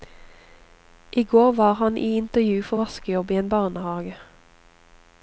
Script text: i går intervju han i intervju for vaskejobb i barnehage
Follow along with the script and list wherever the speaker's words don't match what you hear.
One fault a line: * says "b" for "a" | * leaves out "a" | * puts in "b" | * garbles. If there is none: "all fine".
* says "var" for "intervju"
* puts in "en"